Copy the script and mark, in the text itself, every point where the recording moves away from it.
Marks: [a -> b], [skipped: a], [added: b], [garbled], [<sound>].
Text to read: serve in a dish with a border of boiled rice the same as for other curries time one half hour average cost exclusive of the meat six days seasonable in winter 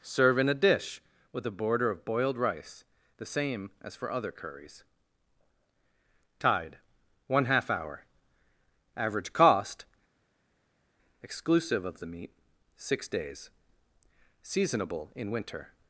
serve in a dish with a border of boiled rice the same as for other curries [time -> tide] one half hour average cost exclusive of the meat six days seasonable in winter